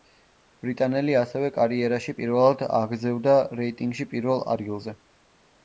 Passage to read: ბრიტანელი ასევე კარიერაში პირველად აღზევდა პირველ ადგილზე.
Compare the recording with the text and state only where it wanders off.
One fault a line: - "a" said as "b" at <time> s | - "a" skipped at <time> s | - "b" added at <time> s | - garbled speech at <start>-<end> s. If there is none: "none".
- "რეიტინგში" added at 3.6 s